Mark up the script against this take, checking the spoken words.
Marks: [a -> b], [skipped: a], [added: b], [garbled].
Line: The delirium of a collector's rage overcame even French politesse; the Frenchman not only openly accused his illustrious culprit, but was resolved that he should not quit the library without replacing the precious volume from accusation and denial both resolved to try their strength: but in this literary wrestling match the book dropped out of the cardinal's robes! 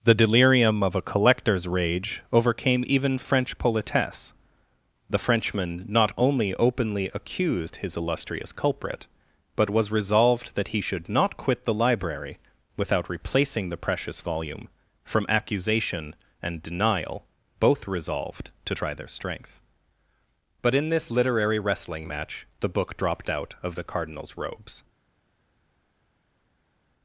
The delirium of a collector's rage overcame even French politesse; the Frenchman not only openly accused his illustrious culprit, but was resolved that he should not quit the library without replacing the precious volume from accusation and denial both resolved to try their strength: but in this literary wrestling match the book dropped out of the cardinal's robes!